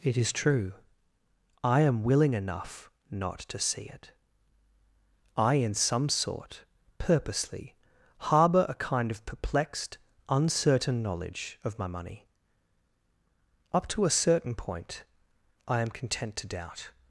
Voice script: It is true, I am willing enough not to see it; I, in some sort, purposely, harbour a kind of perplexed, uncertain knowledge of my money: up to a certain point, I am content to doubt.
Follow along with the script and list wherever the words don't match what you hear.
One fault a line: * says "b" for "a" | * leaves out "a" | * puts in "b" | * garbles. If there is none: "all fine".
all fine